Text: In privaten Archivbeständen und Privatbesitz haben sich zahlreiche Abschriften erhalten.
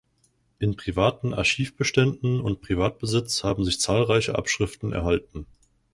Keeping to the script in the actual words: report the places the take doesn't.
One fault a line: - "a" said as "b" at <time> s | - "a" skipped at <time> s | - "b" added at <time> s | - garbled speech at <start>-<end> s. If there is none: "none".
none